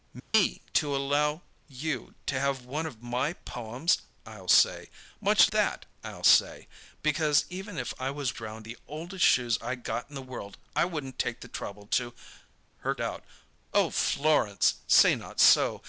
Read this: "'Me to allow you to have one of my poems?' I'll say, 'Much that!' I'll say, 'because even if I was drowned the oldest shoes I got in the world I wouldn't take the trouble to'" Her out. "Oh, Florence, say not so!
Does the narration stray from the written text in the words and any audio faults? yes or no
yes